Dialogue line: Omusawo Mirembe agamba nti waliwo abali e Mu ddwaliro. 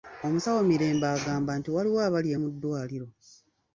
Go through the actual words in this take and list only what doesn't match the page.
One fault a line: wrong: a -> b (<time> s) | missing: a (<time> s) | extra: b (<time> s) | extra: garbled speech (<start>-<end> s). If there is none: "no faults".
no faults